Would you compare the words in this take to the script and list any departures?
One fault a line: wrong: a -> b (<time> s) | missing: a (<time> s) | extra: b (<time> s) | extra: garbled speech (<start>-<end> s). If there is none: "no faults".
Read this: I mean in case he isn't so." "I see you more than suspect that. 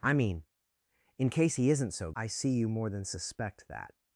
no faults